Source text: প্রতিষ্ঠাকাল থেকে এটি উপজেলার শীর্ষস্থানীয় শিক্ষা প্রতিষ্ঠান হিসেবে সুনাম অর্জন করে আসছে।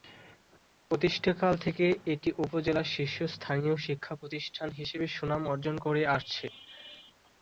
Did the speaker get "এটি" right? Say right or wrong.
right